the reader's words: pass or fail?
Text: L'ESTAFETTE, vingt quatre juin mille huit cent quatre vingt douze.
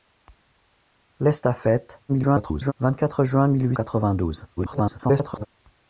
fail